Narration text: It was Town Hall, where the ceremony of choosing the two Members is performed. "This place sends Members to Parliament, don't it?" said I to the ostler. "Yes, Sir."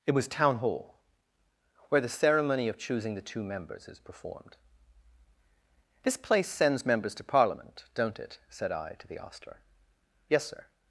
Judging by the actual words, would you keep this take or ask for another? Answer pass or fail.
pass